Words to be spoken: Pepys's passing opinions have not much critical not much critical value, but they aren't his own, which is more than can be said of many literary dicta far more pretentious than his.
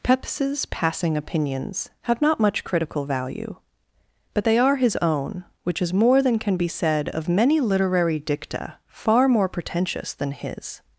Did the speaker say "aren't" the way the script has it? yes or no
no